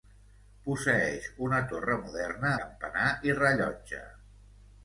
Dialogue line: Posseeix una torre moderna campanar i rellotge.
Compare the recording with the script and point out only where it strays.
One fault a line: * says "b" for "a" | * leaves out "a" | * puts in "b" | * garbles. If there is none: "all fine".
all fine